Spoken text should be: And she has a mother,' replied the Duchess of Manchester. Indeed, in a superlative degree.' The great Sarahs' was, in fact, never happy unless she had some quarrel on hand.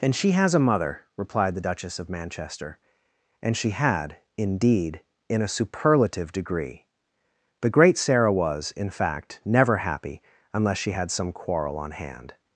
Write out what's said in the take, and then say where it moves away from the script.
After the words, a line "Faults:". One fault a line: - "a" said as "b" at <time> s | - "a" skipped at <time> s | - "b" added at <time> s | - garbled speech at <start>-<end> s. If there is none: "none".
And she has a mother,' replied the Duchess of Manchester. And she had, indeed, in a superlative degree.' The great Sarah' was, in fact, never happy unless she had some quarrel on hand.
Faults:
- "And she had" added at 3.4 s
- "Sarahs" said as "Sarah" at 8.0 s